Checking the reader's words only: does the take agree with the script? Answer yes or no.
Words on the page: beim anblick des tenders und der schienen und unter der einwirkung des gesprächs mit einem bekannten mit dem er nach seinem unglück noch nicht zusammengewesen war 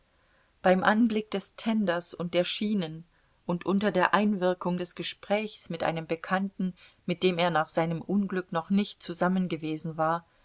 yes